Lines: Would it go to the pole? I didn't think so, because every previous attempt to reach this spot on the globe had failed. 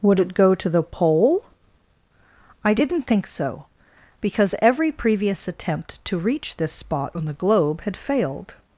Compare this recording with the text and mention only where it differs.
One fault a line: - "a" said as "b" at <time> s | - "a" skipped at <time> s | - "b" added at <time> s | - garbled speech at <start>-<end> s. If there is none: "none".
none